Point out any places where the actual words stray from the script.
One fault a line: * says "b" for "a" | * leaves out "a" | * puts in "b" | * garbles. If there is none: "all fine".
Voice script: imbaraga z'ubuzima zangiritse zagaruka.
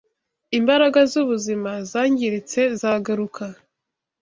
all fine